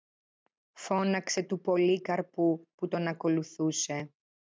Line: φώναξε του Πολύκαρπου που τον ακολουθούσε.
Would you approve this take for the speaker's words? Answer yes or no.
yes